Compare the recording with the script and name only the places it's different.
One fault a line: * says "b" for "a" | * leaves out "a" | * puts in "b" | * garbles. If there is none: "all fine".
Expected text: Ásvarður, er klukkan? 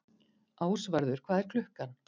* puts in "hvað"